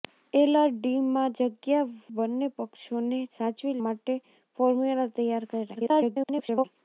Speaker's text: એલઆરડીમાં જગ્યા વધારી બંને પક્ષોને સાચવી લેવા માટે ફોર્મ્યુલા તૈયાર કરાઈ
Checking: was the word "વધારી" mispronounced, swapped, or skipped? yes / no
yes